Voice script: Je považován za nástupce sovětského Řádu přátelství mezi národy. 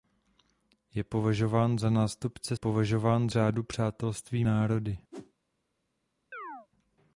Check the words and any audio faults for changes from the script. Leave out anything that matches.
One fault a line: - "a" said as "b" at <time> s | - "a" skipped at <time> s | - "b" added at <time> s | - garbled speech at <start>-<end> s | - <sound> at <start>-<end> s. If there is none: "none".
- "sovětského" said as "považován" at 2.5 s
- "mezi" skipped at 4.4 s
- whoosh at 5.1-5.3 s
- chirp at 6.3-6.7 s